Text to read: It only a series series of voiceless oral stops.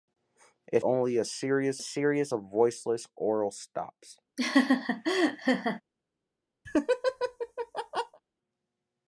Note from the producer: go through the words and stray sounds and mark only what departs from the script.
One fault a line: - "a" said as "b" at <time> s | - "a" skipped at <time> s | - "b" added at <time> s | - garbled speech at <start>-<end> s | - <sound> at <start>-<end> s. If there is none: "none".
- laugh at 4.4-5.8 s
- laugh at 6.6-8.2 s